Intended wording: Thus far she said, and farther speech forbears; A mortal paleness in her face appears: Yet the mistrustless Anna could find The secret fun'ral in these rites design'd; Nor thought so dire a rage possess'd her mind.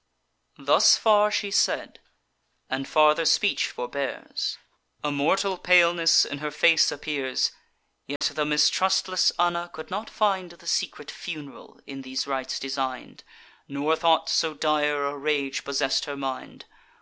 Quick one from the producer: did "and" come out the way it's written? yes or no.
yes